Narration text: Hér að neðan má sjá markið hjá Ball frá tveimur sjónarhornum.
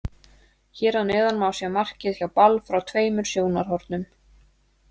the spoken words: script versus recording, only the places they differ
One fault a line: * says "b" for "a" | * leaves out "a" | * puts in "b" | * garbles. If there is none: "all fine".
all fine